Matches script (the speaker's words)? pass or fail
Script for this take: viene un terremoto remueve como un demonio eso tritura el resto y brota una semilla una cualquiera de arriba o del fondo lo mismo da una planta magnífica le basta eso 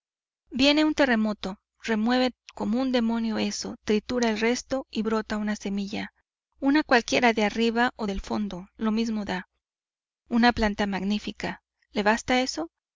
pass